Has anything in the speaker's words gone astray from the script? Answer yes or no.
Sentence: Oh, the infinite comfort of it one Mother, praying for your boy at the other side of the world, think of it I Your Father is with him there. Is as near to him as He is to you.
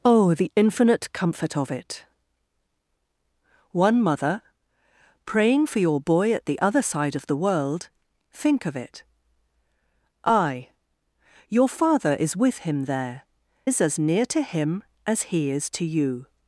no